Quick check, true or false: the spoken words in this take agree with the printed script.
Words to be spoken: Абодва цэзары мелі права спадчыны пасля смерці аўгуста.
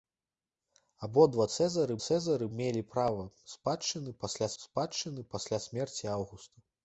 false